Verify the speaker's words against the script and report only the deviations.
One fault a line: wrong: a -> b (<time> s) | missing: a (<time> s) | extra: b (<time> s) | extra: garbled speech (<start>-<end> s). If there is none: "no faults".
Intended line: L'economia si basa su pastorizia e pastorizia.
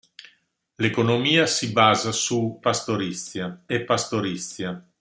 no faults